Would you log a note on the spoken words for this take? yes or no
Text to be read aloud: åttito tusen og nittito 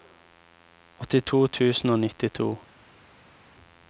no